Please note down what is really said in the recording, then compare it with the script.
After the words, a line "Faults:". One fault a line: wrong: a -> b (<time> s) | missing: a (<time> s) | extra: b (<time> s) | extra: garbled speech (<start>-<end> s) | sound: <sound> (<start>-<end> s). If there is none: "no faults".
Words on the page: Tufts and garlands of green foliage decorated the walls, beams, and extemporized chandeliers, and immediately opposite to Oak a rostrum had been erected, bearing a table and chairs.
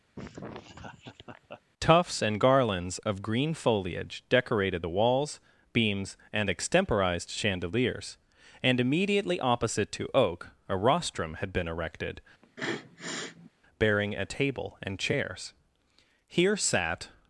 Tufts and garlands of green foliage decorated the walls, beams, and extemporized chandeliers, and immediately opposite to Oak a rostrum had been erected, bearing a table and chairs. Here sat
Faults:
sound: laugh (0.2-1.6 s)
sound: sniff (12.4-13.5 s)
extra: Here sat (16.3 s)